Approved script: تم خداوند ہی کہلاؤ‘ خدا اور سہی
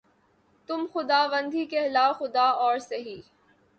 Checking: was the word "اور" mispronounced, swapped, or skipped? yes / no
no